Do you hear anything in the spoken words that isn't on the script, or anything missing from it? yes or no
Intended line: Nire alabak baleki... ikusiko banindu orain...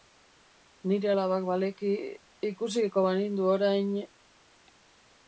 no